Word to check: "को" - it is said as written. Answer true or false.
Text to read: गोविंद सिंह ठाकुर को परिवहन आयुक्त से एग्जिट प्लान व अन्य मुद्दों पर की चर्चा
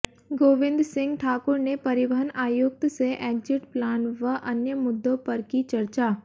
false